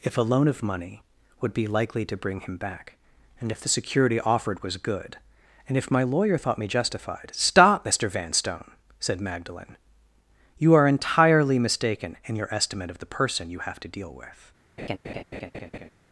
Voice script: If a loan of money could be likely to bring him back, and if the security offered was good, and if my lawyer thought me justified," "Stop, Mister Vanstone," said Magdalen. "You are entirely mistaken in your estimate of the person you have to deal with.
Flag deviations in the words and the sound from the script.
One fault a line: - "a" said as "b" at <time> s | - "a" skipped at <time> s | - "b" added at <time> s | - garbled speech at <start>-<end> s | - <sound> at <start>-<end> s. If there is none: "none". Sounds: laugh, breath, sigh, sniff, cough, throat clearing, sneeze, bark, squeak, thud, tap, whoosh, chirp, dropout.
- "could" said as "would" at 1.4 s
- laugh at 14.8-15.9 s